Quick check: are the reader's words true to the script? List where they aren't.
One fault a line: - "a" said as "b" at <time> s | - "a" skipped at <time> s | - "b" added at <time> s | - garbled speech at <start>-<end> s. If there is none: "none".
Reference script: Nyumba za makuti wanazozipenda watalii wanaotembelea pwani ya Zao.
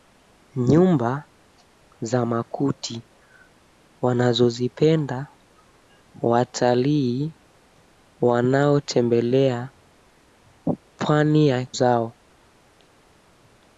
none